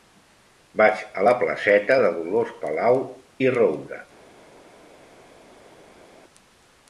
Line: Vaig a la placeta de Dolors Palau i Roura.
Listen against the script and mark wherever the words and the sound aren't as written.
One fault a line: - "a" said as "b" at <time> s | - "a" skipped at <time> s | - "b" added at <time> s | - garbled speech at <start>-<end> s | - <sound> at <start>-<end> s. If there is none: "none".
none